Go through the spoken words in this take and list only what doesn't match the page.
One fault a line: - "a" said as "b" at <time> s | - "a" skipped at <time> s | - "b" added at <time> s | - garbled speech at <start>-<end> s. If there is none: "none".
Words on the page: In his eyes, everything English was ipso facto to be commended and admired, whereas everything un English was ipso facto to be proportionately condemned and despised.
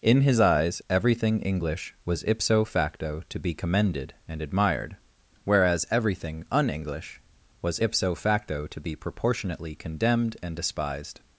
none